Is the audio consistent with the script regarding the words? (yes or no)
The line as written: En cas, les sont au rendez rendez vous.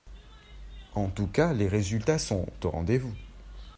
no